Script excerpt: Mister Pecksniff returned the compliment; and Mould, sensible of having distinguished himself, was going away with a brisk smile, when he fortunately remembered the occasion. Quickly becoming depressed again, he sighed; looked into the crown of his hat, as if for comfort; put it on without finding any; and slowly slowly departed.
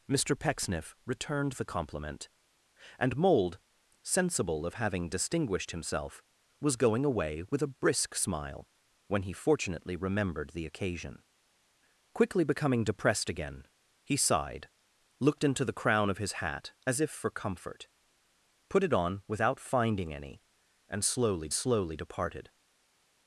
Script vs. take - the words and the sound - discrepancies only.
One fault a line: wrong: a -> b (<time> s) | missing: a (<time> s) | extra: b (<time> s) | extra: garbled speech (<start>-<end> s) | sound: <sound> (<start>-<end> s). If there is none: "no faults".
no faults